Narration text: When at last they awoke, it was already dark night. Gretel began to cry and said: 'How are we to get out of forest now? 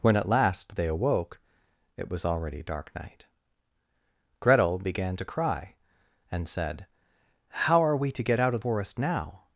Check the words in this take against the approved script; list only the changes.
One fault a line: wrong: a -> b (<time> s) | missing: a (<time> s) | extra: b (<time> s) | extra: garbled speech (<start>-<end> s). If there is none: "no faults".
no faults